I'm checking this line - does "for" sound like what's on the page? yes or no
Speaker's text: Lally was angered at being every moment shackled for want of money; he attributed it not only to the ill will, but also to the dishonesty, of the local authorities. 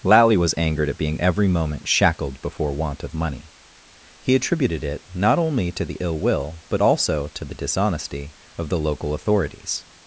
no